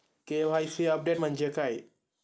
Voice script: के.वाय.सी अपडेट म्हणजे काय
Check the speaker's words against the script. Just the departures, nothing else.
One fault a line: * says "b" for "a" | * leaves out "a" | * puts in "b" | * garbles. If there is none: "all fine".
all fine